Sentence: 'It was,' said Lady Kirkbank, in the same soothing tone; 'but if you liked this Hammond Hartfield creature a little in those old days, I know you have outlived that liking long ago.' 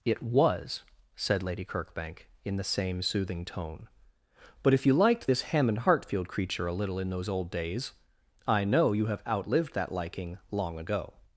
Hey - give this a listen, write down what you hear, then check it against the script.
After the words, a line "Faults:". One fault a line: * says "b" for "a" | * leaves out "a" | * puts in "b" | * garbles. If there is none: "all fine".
'It was,' said Lady Kirkbank, in the same soothing tone; 'but if you liked this Hammond Hartfield creature a little in those old days, I know you have outlived that liking long ago.'
Faults:
all fine